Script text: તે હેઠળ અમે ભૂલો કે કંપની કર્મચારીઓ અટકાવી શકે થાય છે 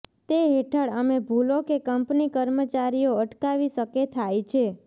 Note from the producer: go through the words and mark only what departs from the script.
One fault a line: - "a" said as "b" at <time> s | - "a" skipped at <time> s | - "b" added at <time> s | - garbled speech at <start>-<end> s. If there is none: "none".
none